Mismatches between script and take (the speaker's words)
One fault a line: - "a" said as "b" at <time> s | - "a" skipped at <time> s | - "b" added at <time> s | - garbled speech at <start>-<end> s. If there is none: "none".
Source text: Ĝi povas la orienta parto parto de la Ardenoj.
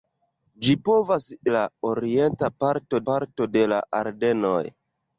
none